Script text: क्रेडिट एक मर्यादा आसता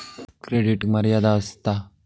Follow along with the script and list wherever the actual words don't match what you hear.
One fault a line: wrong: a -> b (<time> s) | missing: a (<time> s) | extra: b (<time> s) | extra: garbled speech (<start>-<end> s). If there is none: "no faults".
no faults